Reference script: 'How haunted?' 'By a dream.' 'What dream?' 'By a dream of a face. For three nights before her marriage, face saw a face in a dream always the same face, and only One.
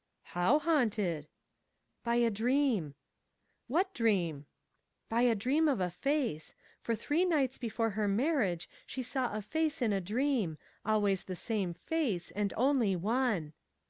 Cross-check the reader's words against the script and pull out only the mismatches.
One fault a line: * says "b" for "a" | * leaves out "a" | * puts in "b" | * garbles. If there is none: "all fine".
* says "she" for "face"